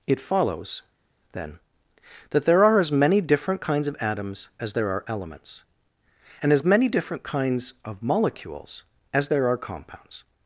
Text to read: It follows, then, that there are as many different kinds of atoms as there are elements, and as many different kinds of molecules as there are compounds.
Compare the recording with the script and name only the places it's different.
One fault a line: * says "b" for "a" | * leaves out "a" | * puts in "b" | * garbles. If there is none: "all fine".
all fine